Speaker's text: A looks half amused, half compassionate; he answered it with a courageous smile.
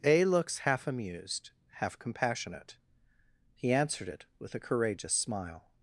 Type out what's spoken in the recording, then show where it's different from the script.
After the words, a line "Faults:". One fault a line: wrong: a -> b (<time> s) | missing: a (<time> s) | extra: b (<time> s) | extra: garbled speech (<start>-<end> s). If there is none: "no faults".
A looks half amused, half compassionate; he answered it with a courageous smile.
Faults:
no faults